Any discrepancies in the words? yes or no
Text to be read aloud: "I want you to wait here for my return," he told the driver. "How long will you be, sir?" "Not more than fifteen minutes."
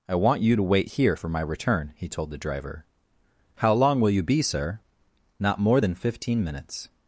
no